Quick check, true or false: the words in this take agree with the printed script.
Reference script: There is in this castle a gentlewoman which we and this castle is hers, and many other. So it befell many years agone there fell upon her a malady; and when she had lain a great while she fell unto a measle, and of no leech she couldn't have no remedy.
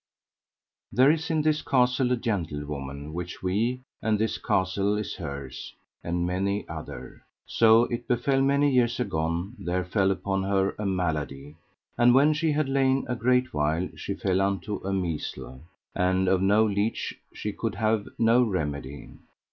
false